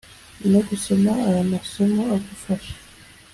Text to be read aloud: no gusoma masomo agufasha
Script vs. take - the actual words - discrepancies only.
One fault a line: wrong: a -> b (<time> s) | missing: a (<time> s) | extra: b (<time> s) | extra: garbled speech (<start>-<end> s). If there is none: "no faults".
extra: aya (1.3 s)